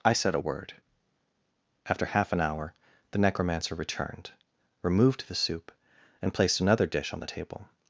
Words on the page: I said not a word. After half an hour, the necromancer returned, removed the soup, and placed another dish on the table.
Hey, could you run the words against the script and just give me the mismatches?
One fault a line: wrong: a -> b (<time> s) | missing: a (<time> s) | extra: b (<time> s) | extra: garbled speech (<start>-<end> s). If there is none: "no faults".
missing: not (0.3 s)